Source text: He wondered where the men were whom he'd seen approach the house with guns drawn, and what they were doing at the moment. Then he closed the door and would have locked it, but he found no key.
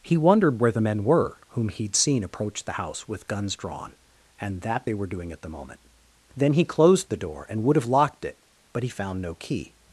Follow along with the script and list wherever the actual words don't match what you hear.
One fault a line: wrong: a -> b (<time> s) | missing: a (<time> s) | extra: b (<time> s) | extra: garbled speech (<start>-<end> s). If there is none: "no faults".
wrong: what -> that (4.6 s)